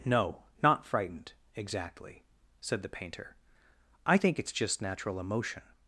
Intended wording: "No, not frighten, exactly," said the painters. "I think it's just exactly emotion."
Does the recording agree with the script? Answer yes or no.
no